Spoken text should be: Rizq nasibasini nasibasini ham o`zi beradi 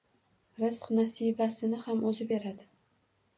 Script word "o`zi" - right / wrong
right